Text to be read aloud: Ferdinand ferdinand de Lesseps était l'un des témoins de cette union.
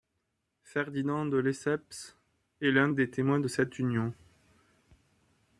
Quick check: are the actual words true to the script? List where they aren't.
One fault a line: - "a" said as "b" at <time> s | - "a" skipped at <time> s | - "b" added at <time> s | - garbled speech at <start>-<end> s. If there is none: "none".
- "ferdinand" skipped at 1.3 s
- "était" said as "est" at 2.6 s